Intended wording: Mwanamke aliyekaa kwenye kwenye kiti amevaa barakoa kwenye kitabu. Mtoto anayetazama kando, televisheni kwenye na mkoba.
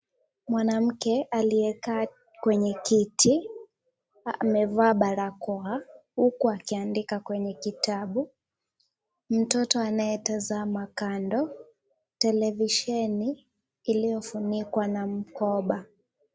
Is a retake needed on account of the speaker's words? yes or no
yes